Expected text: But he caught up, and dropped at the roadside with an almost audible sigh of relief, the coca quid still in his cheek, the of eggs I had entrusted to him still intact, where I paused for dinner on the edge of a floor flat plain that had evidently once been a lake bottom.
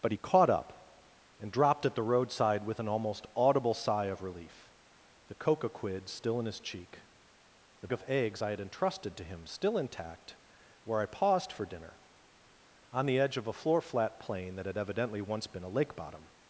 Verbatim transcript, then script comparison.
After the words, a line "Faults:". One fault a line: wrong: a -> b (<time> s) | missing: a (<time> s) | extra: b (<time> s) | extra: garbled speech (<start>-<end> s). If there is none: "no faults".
But he caught up, and dropped at the roadside with an almost audible sigh of relief, the coca quid still in his cheek, the of eggs I had entrusted to him still intact, where I paused for dinner on the edge of a floor flat plain that had evidently once been a lake bottom.
Faults:
no faults